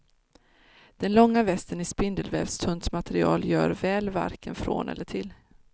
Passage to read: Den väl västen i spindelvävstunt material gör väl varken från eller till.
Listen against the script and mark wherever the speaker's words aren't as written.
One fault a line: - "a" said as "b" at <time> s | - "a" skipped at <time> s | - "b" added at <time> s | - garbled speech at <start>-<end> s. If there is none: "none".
- "väl" said as "långa" at 1.1 s